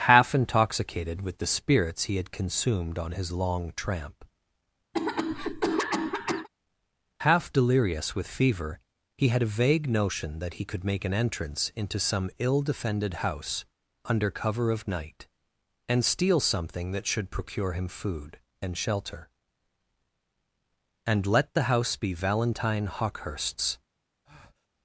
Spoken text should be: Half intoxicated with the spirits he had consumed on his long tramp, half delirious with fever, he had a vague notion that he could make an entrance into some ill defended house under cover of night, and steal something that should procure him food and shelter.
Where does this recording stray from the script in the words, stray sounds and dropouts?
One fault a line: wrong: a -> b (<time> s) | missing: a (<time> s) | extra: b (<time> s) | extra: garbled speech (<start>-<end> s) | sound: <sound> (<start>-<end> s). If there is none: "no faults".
sound: cough (4.9-6.5 s)
extra: And let the house be Valentine Hawkehurst's (21.0 s)
sound: breath (24.2-24.7 s)